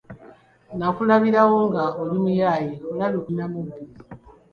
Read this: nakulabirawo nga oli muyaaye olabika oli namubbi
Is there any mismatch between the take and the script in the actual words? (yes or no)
yes